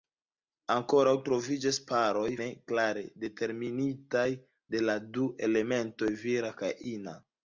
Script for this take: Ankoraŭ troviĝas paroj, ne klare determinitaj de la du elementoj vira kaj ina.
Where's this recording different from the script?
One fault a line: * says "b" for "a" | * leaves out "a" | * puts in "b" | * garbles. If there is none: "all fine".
all fine